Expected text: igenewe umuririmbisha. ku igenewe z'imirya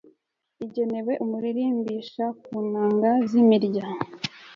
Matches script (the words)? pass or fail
fail